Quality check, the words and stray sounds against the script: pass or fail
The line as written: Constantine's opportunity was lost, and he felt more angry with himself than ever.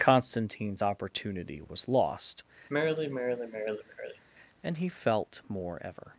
fail